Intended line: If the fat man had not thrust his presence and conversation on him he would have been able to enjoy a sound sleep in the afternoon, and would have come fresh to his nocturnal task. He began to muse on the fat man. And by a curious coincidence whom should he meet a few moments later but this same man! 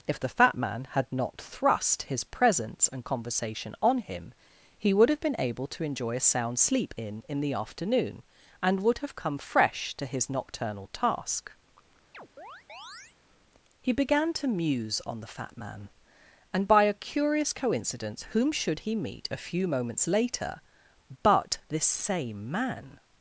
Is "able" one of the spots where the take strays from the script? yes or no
no